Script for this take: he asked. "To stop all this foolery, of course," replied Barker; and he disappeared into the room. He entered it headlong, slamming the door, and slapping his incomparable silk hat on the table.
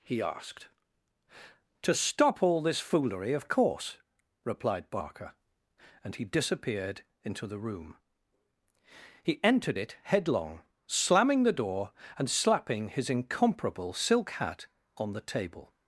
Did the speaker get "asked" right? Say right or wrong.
right